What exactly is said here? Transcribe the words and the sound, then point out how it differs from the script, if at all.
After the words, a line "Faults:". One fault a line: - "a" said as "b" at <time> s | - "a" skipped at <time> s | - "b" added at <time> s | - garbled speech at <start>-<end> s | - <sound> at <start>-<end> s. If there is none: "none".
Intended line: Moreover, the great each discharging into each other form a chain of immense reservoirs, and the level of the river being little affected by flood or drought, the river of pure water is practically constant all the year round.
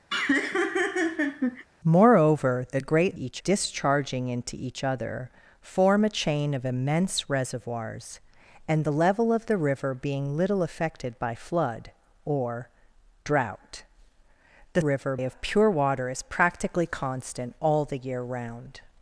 Moreover, the great each discharging into each other form a chain of immense reservoirs, and the level of the river being little affected by flood or drought, the river of pure water is practically constant all the year round.
Faults:
- laugh at 0.1-1.6 s